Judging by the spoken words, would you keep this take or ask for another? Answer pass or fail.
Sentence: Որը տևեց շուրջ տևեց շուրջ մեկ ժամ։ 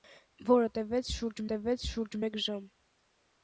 pass